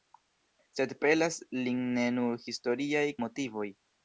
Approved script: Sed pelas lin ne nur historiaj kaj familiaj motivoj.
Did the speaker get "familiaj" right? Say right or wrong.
wrong